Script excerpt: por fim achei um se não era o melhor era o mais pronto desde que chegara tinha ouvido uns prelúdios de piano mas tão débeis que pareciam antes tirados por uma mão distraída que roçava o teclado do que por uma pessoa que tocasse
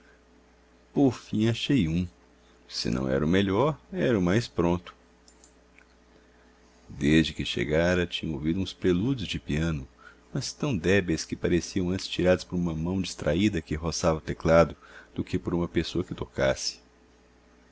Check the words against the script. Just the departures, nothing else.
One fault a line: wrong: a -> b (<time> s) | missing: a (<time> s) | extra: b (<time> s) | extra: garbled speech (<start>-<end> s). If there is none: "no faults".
no faults